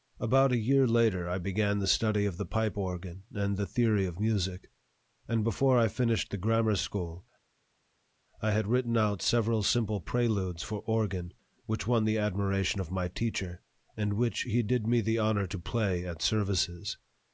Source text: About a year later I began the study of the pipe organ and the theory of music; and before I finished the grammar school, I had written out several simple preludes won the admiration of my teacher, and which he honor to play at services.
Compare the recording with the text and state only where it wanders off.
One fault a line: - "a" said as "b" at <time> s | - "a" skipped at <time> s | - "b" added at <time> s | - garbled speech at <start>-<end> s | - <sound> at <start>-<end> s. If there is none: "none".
- "for organ which" added at 10.6 s
- "did me the" added at 14.6 s